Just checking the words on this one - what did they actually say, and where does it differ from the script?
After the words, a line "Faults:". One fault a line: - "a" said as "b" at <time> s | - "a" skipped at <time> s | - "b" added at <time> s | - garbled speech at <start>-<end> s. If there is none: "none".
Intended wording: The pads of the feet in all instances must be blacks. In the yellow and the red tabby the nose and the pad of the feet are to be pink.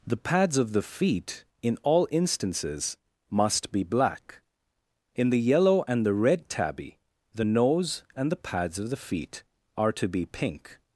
The pads of the feet in all instances must be black. In the yellow and the red tabby the nose and the pads of the feet are to be pink.
Faults:
- "blacks" said as "black" at 3.8 s
- "pad" said as "pads" at 8.4 s